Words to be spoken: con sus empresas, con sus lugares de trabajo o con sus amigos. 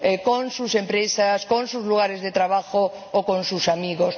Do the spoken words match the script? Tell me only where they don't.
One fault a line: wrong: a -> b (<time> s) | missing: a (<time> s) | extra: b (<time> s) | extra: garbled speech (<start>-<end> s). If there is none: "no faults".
no faults